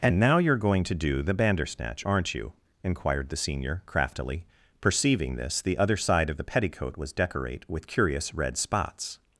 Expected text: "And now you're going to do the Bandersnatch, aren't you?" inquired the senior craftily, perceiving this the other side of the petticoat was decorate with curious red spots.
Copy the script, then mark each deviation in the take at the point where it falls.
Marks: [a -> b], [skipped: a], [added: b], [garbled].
"And now you're going to do the Bandersnatch, aren't you?" inquired the senior craftily, perceiving this the other side of the petticoat was decorate with curious red spots.